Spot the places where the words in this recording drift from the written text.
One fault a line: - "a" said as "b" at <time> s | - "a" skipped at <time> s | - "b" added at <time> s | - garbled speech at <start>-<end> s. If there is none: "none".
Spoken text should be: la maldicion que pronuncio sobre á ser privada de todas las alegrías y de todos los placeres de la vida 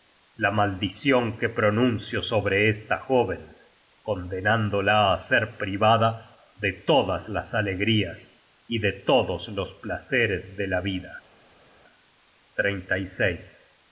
- "esta jóven condenándola" added at 2.7 s